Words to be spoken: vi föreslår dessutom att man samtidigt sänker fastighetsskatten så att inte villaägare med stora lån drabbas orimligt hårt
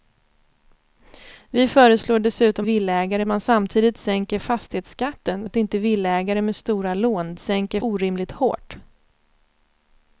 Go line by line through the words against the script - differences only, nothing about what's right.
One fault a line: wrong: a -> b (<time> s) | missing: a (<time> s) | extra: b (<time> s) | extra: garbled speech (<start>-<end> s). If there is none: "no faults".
wrong: att -> villaägare (2.6 s)
missing: så (5.5 s)
wrong: drabbas -> sänker (7.4 s)